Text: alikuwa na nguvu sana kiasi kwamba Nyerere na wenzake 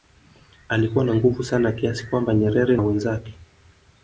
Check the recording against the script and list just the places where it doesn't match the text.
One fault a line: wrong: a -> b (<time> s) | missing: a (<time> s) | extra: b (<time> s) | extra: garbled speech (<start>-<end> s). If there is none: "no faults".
missing: na (2.8 s)